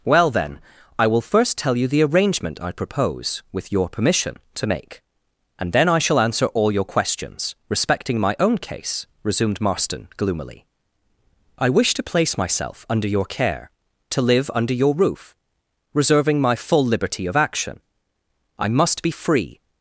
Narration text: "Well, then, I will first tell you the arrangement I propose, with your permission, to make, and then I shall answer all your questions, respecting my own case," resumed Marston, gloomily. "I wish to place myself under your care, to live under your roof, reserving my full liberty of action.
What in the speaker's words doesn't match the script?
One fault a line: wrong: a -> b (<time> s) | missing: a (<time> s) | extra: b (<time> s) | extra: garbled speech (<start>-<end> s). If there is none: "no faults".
extra: I must be free (18.6 s)